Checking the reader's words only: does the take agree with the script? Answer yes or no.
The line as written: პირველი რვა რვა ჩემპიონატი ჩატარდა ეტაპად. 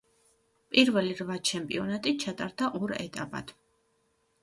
no